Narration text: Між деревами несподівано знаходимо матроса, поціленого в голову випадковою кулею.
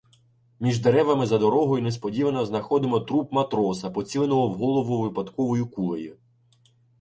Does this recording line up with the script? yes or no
no